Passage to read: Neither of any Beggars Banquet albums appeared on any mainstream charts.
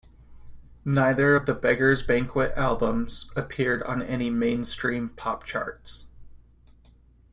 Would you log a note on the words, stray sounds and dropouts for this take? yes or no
yes